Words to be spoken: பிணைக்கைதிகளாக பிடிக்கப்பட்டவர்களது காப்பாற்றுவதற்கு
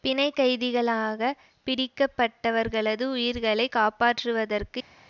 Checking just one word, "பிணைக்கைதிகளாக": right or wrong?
right